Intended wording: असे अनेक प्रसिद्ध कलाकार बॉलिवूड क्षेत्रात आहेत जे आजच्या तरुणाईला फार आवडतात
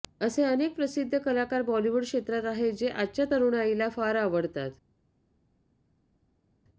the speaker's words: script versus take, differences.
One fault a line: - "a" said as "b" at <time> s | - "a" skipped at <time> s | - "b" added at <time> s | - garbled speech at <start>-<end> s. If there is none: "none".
none